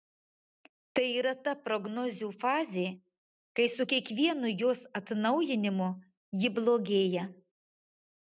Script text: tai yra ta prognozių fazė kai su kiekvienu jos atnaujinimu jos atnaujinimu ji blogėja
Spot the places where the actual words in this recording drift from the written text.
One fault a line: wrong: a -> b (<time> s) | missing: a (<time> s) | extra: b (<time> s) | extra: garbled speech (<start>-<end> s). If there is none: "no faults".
missing: jos atnaujinimu (5.9 s)